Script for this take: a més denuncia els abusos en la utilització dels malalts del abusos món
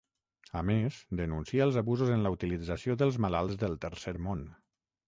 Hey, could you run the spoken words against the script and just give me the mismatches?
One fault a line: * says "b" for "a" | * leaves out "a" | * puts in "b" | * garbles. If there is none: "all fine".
* says "tercer" for "abusos"